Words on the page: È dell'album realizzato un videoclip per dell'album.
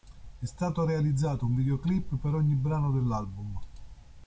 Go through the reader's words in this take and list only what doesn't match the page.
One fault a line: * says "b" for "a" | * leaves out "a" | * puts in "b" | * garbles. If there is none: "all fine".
* says "stato" for "dell'album"
* puts in "ogni brano"